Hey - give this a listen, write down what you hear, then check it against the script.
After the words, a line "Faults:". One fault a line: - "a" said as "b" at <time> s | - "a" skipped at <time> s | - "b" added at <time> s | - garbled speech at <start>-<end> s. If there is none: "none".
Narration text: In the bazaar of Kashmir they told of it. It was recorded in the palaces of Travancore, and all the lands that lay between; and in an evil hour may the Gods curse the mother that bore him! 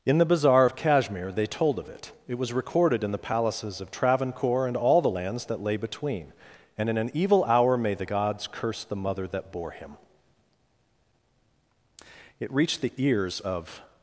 In the bazaar of Kashmir they told of it. It was recorded in the palaces of Travancore, and all the lands that lay between; and in an evil hour may the Gods curse the mother that bore him! it reached the ears of
Faults:
- "it reached the ears of" added at 12.4 s